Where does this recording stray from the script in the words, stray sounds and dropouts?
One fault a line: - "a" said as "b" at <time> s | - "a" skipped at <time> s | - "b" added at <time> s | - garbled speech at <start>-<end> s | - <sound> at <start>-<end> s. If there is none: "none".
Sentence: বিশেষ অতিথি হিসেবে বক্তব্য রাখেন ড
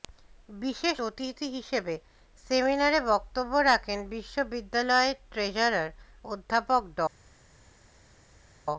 - "সেমিনারে" added at 2.5 s
- "বিশ্ববিদ্যালয়ের ট্রেজারার অধ্যাপক" added at 4.1 s